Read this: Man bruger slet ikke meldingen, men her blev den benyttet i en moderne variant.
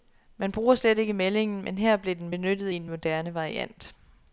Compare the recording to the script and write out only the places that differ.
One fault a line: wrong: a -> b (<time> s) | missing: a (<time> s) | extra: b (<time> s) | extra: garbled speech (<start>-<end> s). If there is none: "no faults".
no faults